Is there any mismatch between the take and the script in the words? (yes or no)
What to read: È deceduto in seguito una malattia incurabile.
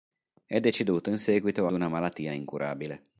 no